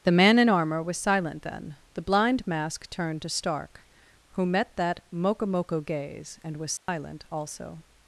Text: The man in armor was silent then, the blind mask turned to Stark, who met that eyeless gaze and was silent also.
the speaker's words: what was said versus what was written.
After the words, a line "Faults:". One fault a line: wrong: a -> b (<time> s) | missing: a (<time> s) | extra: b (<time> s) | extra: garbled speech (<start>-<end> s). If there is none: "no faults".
The man in armor was silent then, the blind mask turned to Stark, who met that mokomoko gaze and was silent also.
Faults:
wrong: eyeless -> mokomoko (5.1 s)